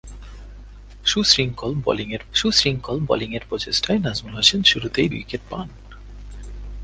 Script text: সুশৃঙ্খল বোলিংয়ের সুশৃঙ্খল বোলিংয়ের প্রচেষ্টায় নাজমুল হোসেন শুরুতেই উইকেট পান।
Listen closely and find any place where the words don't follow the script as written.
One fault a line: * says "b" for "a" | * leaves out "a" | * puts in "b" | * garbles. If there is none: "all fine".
all fine